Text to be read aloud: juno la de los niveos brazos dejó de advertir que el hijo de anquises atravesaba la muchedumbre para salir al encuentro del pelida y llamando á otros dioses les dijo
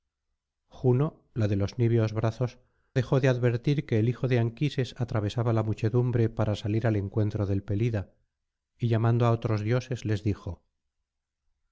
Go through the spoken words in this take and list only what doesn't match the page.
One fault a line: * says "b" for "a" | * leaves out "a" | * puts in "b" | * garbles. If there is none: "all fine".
all fine